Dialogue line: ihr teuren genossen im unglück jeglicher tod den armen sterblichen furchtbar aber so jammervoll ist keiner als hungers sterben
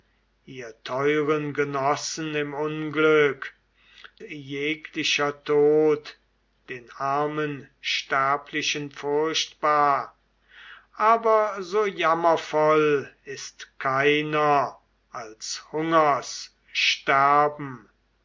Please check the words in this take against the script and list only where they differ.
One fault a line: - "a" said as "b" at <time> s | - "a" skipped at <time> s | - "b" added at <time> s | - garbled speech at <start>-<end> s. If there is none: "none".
none